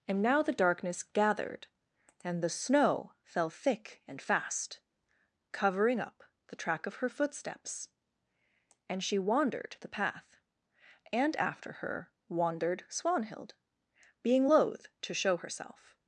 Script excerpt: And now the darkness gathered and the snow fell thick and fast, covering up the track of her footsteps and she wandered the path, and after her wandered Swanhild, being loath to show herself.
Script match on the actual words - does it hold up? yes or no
yes